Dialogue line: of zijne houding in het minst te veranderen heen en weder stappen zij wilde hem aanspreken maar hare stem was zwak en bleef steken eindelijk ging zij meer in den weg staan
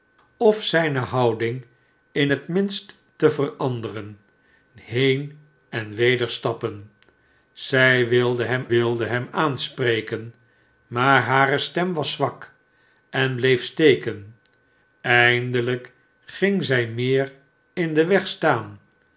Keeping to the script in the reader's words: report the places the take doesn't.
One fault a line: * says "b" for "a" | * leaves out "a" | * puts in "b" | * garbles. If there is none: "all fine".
* puts in "wilde hem"